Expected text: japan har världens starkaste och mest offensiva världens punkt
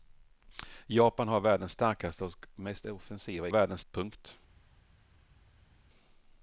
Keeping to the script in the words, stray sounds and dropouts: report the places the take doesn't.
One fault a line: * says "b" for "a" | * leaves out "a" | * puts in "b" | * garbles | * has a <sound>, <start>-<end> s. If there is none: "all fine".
all fine